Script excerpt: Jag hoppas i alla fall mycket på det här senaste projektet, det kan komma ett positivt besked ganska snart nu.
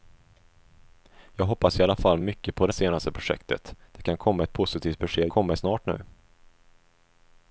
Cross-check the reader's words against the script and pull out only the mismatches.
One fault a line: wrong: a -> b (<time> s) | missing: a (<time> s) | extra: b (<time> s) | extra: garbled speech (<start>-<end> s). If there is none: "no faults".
missing: här (2.7 s)
wrong: ganska -> komma (5.3 s)